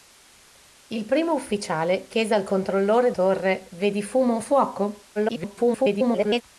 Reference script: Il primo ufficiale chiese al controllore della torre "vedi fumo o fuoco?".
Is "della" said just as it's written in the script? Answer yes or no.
no